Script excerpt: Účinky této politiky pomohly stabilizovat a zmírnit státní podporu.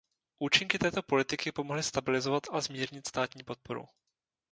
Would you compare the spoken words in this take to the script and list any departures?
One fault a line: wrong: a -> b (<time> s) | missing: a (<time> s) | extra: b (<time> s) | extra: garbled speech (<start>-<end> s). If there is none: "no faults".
no faults